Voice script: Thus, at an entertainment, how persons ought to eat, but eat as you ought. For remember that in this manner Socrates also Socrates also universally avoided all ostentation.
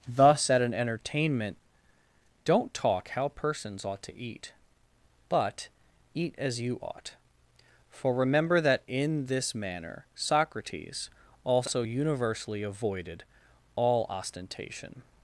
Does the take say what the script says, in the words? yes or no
no